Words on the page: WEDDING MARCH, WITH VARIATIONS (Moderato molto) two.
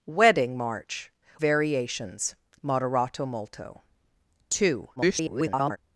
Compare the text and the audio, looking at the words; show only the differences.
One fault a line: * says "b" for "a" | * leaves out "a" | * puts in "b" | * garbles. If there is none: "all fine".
* leaves out "WITH"
* garbles